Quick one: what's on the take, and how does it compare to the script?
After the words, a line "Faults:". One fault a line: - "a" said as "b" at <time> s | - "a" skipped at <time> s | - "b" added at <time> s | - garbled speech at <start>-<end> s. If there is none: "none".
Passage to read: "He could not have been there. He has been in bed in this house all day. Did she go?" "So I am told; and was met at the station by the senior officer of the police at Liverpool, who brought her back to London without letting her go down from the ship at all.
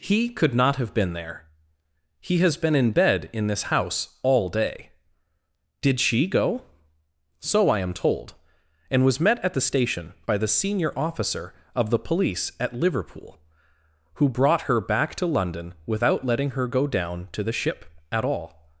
"He could not have been there. He has been in bed in this house all day. Did she go?" "So I am told; and was met at the station by the senior officer of the police at Liverpool, who brought her back to London without letting her go down to the ship at all.
Faults:
- "from" said as "to" at 17.3 s